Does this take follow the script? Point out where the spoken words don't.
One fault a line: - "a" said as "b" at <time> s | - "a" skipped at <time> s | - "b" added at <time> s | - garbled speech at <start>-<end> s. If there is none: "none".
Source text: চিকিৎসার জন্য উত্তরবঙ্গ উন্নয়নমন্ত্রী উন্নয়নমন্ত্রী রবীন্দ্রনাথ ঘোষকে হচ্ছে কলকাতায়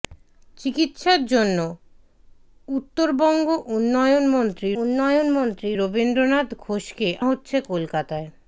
none